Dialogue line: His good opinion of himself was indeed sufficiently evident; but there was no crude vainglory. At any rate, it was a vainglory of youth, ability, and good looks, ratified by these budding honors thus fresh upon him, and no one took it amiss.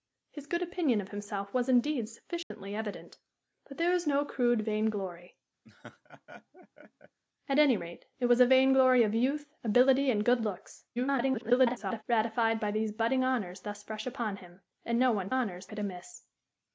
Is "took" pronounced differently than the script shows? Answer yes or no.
yes